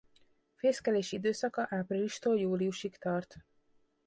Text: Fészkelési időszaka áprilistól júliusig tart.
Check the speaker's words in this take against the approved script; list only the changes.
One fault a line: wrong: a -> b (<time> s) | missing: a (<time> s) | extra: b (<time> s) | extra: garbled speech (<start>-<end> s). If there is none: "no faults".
no faults